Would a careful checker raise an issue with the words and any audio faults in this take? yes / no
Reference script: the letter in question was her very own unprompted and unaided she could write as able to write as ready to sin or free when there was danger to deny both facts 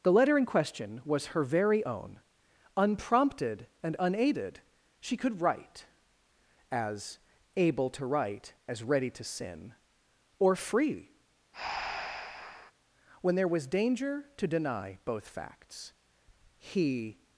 yes